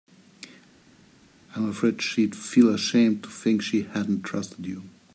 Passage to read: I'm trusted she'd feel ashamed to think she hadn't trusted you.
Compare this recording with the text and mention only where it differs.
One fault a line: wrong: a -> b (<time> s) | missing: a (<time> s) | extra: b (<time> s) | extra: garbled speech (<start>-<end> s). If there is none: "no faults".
wrong: trusted -> afraid (1.7 s)